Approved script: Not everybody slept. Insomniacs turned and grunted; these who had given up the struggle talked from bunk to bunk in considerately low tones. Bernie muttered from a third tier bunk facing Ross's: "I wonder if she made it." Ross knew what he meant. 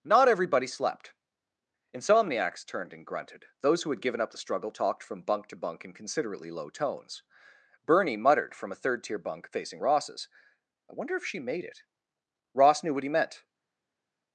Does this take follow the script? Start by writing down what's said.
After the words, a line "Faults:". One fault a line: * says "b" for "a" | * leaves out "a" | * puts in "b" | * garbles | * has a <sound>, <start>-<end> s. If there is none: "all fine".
Not everybody slept. Insomniacs turned and grunted; those who had given up the struggle talked from bunk to bunk in considerately low tones. Bernie muttered from a third tier bunk facing Ross's: "I wonder if she made it." Ross knew what he meant.
Faults:
* says "those" for "these"